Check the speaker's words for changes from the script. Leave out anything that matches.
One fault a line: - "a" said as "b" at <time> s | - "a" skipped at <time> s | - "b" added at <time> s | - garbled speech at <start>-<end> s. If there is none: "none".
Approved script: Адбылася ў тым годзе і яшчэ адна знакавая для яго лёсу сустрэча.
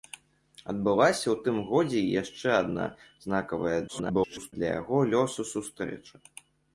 - garbled speech at 3.9-4.5 s